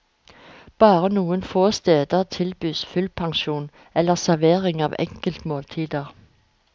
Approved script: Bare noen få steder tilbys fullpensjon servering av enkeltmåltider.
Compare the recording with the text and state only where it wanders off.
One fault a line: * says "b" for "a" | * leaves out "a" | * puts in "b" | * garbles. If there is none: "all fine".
* puts in "eller"